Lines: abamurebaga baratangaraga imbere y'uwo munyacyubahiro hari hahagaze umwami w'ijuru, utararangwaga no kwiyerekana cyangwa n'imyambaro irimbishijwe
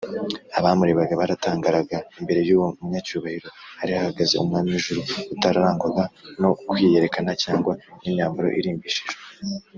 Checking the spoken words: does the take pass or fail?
pass